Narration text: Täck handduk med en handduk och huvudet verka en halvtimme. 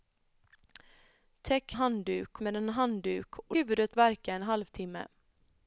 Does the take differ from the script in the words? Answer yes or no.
no